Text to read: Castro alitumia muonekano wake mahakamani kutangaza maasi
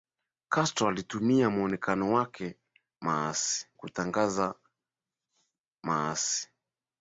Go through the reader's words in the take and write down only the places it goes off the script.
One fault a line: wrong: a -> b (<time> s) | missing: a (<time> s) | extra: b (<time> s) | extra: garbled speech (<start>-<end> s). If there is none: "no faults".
wrong: mahakamani -> maasi (3.0 s)